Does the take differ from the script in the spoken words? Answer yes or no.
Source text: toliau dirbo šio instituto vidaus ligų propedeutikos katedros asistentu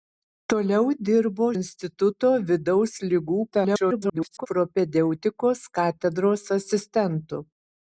yes